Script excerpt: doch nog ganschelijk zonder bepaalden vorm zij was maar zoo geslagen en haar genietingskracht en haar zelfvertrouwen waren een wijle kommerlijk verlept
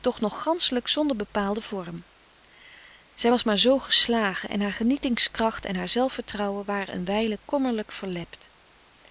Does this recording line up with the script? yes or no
yes